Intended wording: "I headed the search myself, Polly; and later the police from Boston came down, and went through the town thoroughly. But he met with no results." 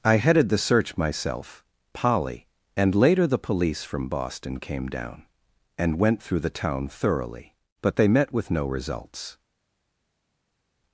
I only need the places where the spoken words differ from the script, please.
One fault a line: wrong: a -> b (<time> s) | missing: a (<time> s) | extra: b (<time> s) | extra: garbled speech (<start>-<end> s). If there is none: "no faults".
wrong: he -> they (8.0 s)